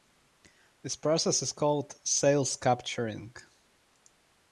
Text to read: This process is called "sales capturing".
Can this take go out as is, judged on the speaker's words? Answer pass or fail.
pass